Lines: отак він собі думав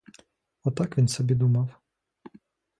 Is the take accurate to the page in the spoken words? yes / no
yes